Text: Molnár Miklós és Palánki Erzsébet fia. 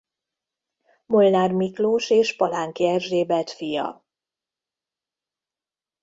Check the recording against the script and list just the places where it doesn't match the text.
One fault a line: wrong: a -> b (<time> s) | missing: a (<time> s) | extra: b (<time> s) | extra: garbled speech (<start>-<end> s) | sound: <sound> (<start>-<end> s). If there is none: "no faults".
no faults